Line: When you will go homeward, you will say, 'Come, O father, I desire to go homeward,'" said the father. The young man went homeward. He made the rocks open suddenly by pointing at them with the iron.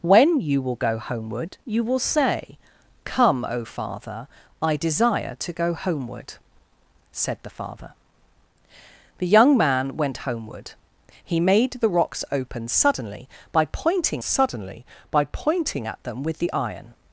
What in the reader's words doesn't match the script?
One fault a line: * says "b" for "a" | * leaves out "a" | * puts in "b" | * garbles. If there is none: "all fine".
* puts in "suddenly by pointing"